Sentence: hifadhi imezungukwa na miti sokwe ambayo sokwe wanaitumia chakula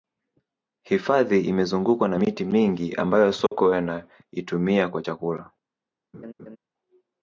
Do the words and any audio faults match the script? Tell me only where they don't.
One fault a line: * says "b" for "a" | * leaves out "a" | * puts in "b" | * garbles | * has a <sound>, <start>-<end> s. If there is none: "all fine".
* says "mingi" for "sokwe"
* has a dropout, 3.5-3.5 s
* puts in "kwa"
* has a laugh, 6.1-6.6 s